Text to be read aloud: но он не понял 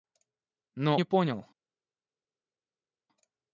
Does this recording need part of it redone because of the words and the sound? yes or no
yes